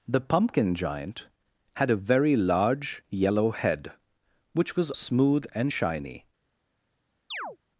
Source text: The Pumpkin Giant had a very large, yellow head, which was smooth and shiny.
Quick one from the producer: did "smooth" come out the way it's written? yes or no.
yes